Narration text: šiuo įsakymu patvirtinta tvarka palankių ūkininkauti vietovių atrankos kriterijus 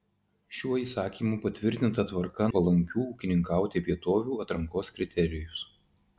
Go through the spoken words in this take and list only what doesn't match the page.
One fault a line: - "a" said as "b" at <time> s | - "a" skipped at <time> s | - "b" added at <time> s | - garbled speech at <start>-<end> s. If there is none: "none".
none